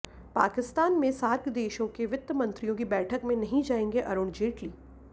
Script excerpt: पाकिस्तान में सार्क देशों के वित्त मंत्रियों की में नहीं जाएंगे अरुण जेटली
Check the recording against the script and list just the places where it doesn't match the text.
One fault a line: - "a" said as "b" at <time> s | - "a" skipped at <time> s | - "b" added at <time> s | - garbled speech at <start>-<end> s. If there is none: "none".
- "बैठक" added at 2.9 s